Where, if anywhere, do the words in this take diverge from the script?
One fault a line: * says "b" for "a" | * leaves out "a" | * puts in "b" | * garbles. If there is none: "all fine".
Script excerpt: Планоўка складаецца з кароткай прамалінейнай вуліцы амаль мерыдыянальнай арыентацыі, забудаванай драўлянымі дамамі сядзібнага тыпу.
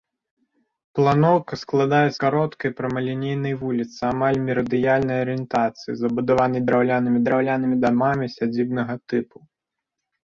* leaves out "з"
* puts in "драўлянымі"